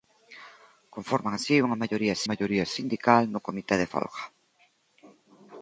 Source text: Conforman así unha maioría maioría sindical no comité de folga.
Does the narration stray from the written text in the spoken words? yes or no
no